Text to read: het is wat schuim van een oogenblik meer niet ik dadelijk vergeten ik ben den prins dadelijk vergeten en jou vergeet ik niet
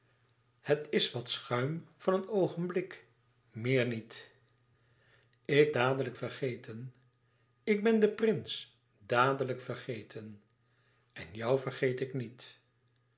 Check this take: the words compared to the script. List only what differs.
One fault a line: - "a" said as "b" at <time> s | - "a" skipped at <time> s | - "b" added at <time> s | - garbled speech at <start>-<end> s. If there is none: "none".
none